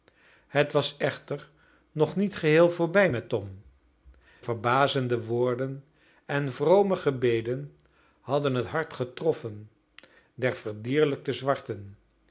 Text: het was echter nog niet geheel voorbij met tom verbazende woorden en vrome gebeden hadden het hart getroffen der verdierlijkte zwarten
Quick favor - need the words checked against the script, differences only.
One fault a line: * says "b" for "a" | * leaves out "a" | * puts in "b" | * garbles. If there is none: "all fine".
all fine